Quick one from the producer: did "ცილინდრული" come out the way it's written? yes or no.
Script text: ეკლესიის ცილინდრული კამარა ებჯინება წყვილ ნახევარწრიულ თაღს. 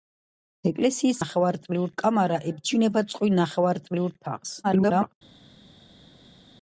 no